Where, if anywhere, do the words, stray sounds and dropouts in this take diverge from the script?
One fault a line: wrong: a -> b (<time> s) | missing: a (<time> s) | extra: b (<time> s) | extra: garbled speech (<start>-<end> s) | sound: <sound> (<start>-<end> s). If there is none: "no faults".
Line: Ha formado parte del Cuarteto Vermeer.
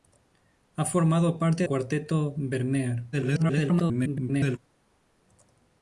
missing: del (1.7 s)
extra: garbled speech (3.1-4.6 s)